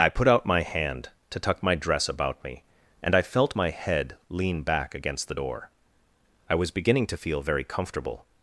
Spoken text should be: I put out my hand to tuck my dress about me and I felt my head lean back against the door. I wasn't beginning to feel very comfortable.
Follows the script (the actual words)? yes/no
no